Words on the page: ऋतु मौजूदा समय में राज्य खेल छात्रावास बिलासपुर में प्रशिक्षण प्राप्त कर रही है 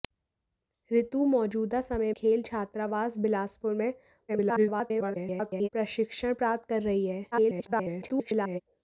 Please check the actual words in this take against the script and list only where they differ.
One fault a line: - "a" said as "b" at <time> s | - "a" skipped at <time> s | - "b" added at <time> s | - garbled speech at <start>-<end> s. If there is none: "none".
- "में राज्य" skipped at 2.1 s
- garbled speech at 4.3-5.7 s
- garbled speech at 7.3-8.6 s